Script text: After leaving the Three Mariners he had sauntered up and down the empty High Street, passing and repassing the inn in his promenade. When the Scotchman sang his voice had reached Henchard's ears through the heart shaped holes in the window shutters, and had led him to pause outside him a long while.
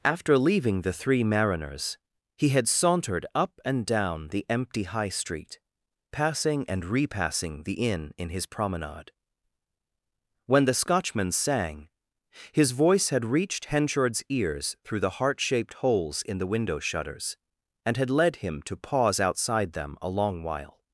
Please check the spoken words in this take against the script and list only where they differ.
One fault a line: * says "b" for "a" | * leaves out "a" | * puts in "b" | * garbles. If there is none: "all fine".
* says "them" for "him"